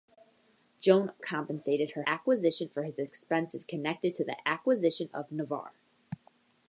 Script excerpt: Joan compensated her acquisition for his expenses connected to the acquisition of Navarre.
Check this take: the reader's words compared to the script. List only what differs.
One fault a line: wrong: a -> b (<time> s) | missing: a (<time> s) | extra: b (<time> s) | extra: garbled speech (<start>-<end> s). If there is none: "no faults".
no faults